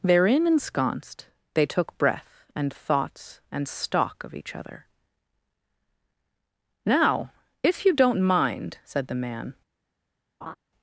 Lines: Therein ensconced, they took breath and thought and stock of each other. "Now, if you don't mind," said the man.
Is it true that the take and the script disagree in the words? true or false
true